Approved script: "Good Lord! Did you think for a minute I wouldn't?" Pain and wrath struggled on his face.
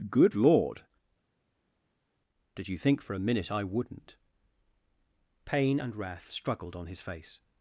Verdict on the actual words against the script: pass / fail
pass